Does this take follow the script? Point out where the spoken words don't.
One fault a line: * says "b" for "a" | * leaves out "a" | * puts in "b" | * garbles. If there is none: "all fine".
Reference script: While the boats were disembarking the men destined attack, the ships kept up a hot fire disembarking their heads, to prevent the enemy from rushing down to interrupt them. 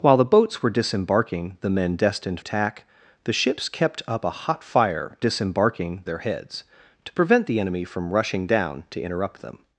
all fine